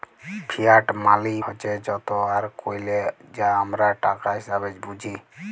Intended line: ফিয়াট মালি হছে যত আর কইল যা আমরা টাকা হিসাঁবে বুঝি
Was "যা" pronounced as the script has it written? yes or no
yes